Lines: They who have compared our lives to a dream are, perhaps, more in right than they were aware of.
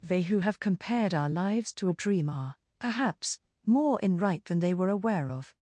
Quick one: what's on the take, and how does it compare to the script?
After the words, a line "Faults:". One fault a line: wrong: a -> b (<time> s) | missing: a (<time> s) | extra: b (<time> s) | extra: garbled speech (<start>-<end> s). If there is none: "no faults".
They who have compared our lives to a dream are, perhaps, more in right than they were aware of.
Faults:
no faults